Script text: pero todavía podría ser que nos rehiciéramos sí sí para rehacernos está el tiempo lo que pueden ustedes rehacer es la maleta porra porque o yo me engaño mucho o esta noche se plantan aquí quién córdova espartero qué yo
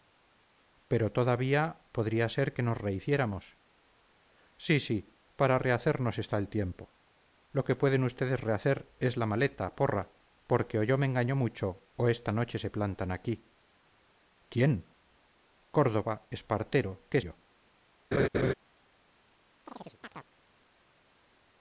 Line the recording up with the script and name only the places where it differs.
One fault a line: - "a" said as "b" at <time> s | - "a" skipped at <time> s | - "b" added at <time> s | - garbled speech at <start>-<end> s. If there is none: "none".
none